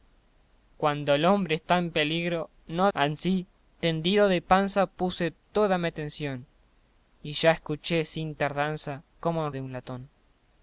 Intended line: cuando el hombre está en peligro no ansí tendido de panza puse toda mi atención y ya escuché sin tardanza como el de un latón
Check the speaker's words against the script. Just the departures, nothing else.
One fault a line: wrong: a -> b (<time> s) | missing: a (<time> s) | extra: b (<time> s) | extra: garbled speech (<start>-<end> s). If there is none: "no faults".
no faults